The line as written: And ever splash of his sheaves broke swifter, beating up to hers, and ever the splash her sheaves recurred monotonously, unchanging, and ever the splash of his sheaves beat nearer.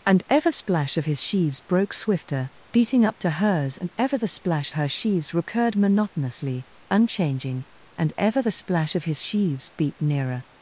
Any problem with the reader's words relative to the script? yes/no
no